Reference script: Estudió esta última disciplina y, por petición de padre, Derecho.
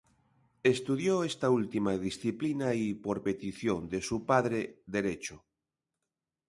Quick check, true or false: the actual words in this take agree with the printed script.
false